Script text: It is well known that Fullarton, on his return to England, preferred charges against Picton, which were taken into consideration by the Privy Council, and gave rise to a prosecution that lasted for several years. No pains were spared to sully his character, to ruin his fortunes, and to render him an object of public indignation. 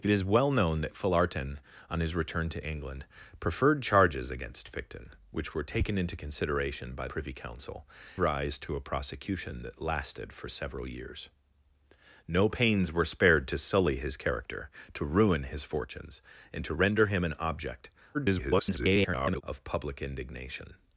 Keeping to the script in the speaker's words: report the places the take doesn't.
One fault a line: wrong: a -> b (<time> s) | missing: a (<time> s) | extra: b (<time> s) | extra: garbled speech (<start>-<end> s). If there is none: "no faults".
missing: the (7.1 s)
missing: and gave (7.9 s)
extra: garbled speech (18.1-19.4 s)